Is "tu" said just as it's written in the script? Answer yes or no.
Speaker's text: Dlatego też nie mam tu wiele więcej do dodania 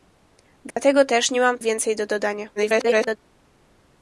no